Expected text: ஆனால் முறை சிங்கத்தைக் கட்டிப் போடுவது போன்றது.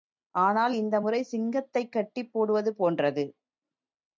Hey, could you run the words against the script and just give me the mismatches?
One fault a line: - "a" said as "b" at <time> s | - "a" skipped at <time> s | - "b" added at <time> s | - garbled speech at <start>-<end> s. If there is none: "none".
- "இந்த" added at 0.7 s